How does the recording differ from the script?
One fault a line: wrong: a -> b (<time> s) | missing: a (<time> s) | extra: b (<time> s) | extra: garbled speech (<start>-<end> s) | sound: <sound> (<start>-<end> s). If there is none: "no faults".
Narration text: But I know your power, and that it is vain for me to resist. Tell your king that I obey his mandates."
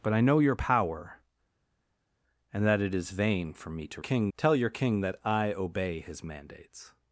wrong: resist -> king (4.0 s)